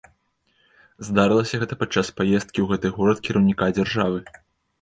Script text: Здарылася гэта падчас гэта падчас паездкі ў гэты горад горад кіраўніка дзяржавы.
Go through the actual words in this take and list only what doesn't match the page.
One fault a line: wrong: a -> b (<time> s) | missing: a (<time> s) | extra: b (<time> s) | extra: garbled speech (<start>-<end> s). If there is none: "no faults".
missing: гэта падчас (2.1 s)
missing: горад (3.2 s)